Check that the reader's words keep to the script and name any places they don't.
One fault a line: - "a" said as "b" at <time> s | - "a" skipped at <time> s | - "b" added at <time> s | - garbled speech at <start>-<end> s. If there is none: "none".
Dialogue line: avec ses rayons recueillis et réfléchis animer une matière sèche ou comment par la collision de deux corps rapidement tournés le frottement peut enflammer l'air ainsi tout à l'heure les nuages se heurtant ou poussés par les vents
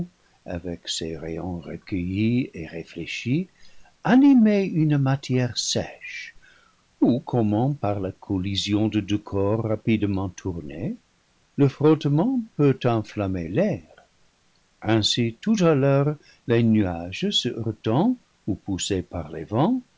none